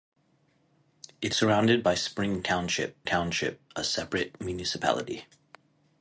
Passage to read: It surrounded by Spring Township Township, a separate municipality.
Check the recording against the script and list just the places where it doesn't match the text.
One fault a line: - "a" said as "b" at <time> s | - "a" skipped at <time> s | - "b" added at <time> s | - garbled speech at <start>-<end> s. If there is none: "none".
none